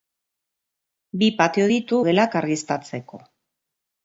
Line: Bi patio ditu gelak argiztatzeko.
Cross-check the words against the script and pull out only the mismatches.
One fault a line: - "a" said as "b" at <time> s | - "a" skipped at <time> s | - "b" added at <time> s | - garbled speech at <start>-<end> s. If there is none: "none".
none